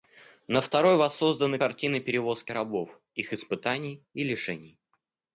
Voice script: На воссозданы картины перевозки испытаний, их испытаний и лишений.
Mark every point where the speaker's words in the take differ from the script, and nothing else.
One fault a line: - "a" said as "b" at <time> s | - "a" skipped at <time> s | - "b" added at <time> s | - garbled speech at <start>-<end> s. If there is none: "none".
- "второй" added at 0.6 s
- "испытаний" said as "рабов" at 2.5 s